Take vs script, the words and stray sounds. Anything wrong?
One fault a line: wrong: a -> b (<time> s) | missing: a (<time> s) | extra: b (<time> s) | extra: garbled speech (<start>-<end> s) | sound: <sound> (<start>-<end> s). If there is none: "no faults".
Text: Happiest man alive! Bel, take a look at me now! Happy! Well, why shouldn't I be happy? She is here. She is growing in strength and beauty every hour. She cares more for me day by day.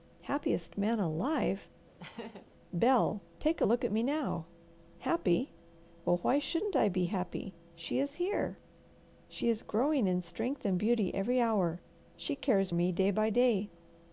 sound: laugh (2.0-2.5 s)
missing: more for (12.7 s)